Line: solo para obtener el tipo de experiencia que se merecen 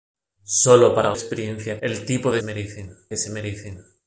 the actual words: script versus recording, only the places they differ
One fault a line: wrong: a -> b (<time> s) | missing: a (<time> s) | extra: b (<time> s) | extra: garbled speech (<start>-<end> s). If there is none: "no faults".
wrong: obtener -> experiencia (1.1 s)
wrong: experiencia -> merecen (2.4 s)